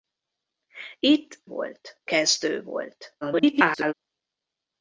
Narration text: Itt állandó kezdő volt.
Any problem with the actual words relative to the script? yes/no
yes